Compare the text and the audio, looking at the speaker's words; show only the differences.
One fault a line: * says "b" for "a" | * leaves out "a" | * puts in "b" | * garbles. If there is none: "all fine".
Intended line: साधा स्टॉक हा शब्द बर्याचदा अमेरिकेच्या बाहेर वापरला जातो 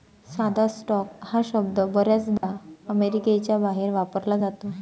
all fine